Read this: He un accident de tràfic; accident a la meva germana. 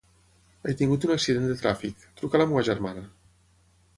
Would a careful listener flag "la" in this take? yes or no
no